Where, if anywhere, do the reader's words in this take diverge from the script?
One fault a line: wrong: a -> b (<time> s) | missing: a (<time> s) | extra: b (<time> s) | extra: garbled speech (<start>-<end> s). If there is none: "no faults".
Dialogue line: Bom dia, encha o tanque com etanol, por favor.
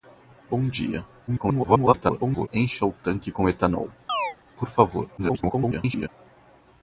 extra: garbled speech (1.3-2.5 s)
extra: garbled speech (5.2-6.1 s)